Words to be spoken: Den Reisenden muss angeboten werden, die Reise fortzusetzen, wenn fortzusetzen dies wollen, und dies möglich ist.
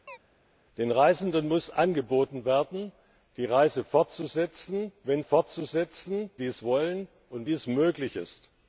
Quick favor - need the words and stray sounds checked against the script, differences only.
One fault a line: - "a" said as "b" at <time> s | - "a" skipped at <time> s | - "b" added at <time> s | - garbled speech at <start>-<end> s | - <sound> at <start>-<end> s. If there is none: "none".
- chirp at 0.1-0.2 s